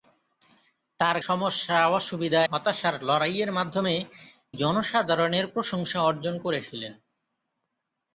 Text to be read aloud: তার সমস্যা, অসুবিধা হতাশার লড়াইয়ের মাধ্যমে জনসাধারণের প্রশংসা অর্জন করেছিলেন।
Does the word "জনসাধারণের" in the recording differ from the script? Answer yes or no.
no